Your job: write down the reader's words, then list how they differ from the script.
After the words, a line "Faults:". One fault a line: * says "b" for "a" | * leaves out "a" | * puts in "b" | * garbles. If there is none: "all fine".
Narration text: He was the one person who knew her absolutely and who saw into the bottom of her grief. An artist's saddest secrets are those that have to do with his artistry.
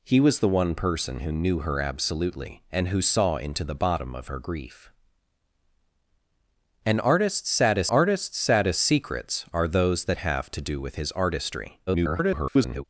He was the one person who knew her absolutely and who saw into the bottom of her grief. An artist's saddest artist's saddest secrets are those that have to do with his artistry. [garbled]
Faults:
* puts in "artist's saddest"
* garbles